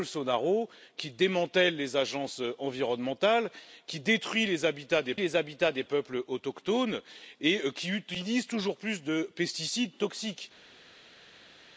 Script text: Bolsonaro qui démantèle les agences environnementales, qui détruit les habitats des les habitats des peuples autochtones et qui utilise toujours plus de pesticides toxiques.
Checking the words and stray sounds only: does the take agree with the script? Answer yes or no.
yes